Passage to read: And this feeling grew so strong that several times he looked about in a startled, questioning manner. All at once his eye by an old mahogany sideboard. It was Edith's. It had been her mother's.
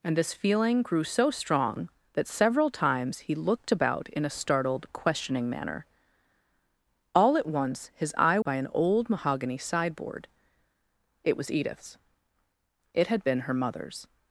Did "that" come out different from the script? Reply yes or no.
no